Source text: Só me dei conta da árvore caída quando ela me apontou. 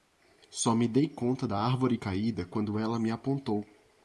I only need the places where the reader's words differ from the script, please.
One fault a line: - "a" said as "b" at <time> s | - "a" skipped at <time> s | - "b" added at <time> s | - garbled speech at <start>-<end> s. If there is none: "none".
none